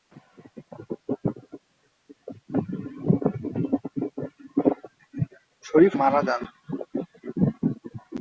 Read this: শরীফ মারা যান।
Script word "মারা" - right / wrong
right